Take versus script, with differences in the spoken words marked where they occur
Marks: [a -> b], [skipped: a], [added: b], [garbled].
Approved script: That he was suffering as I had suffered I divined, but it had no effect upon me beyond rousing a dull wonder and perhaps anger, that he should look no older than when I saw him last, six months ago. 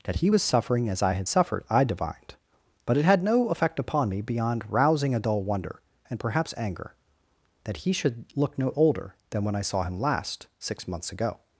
That he was suffering as I had suffered I divined, but it had no effect upon me beyond rousing a dull wonder and perhaps anger, that he should look no older than when I saw him last, six months ago.